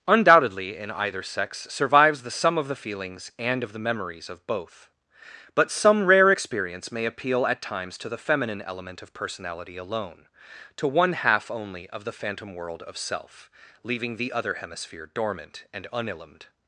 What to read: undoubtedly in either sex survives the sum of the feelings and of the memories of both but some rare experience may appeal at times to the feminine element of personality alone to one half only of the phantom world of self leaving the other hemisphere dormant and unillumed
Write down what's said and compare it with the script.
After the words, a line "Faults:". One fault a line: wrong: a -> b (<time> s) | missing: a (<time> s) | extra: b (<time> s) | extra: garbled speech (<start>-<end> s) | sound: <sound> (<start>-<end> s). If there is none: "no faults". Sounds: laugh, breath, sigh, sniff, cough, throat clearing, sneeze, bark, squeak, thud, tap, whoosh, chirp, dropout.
undoubtedly in either sex survives the sum of the feelings and of the memories of both but some rare experience may appeal at times to the feminine element of personality alone to one half only of the phantom world of self leaving the other hemisphere dormant and unillumed
Faults:
no faults